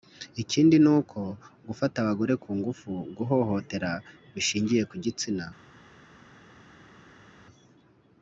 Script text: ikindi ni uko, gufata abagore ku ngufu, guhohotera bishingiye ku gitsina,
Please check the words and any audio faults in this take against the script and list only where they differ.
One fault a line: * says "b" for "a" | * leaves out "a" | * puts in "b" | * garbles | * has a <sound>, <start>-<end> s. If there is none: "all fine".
all fine